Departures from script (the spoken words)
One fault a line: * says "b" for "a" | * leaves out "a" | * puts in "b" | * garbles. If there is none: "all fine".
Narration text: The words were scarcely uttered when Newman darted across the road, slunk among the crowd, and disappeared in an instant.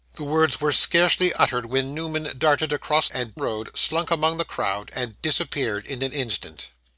* says "and" for "the"